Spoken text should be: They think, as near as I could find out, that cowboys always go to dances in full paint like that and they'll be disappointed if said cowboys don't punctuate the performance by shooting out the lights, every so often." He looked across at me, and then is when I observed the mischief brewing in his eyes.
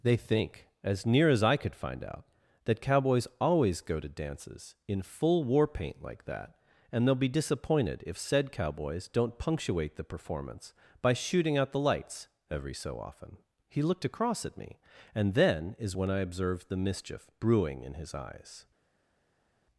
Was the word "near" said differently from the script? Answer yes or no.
no